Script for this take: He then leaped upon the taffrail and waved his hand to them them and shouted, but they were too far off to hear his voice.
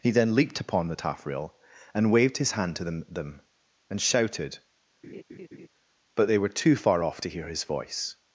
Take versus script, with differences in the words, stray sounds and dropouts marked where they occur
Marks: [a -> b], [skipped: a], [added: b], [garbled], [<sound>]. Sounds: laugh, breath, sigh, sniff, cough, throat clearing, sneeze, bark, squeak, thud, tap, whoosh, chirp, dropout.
He then leaped upon the taffrail and waved his hand to them them and shouted, [laugh] but they were too far off to hear his voice.